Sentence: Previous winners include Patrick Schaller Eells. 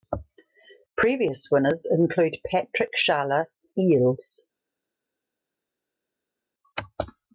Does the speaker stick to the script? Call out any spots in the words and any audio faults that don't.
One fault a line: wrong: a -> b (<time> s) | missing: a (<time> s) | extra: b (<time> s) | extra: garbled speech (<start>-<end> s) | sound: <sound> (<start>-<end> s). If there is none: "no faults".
no faults